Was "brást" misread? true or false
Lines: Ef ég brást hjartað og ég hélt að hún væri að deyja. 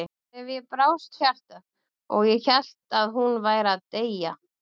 false